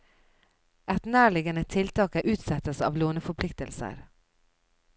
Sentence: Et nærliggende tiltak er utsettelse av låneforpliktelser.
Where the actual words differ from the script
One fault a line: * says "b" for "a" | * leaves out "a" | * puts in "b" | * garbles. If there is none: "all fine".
all fine